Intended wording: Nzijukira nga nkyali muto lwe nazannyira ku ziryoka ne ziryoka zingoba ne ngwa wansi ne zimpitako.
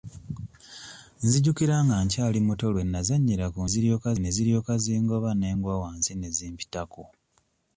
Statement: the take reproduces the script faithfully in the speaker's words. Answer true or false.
true